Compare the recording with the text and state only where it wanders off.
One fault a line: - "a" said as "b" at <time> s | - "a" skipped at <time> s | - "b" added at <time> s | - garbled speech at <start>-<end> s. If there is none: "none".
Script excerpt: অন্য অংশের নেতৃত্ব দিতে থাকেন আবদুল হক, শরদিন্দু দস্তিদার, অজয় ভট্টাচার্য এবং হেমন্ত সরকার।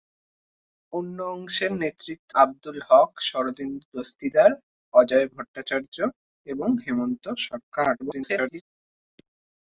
- "দিতে থাকেন" skipped at 2.3 s
- garbled speech at 8.0-8.6 s